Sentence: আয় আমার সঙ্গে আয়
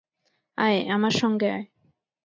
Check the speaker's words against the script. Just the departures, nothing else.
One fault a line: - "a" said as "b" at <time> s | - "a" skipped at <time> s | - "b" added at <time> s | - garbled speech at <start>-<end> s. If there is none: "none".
none